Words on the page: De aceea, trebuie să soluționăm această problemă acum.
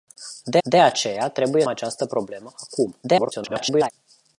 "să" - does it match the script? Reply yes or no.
no